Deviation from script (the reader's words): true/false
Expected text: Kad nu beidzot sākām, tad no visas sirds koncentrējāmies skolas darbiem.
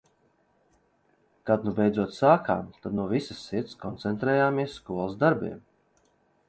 false